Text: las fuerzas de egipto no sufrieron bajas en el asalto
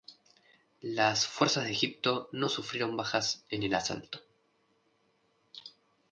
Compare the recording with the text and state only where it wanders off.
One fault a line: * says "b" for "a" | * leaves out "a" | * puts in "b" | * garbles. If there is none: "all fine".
all fine